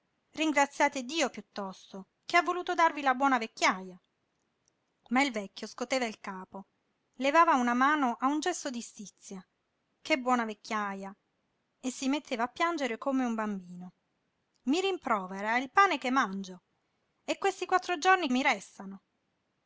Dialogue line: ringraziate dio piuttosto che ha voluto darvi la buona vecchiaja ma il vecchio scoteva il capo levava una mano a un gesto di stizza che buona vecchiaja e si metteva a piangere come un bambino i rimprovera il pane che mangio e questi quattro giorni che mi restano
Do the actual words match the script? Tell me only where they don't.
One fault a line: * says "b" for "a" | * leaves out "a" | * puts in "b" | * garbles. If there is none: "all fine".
* leaves out "che"